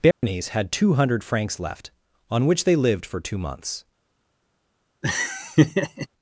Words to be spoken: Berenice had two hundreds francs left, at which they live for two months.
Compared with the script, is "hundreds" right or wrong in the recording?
wrong